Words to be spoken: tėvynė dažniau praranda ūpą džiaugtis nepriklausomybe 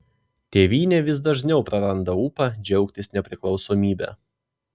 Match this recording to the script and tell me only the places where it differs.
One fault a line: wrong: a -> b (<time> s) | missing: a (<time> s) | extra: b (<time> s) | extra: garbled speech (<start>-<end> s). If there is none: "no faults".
extra: vis (1.1 s)